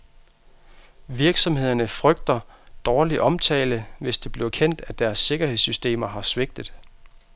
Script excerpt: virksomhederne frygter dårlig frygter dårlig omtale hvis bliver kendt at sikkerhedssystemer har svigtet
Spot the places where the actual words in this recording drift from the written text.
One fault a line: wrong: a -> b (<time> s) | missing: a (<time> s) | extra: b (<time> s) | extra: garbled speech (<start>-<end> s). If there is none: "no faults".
missing: frygter dårlig (3.2 s)
extra: det (4.2 s)
extra: deres (5.0 s)